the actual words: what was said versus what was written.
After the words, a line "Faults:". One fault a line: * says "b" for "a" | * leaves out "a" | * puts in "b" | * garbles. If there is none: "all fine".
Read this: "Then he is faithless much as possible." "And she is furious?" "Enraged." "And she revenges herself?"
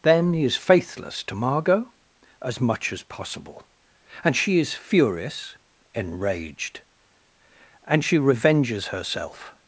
"Then he is faithless to Margot?" "As much as possible." "And she is furious?" "Enraged." "And she revenges herself?"
Faults:
* puts in "to Margot As"